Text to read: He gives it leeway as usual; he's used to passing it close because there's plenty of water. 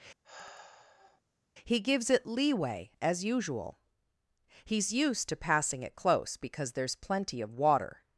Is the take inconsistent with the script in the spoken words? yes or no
no